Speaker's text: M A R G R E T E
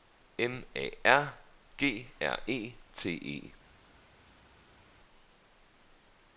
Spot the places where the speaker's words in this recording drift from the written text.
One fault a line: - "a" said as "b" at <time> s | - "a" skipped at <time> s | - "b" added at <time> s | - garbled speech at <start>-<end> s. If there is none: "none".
none